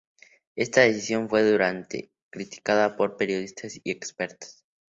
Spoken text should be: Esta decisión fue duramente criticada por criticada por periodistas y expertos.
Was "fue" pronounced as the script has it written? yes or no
yes